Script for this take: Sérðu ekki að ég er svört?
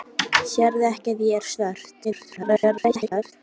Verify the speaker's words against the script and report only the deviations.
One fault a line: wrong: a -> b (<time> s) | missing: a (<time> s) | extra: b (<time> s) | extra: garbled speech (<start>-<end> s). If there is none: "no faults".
extra: garbled speech (2.0-3.3 s)